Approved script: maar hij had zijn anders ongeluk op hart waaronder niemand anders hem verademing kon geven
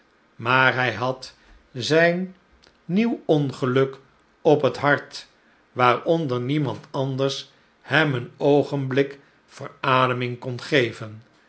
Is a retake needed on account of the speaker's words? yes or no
yes